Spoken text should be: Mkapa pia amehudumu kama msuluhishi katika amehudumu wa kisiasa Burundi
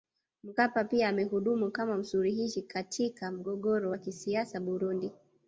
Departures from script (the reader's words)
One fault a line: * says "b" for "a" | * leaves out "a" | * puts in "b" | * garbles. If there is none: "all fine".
* says "mgogoro" for "amehudumu"